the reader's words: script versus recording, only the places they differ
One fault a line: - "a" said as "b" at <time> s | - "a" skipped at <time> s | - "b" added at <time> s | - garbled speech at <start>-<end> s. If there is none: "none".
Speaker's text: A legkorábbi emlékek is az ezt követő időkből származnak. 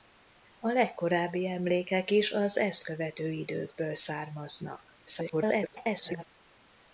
- garbled speech at 5.1-6.2 s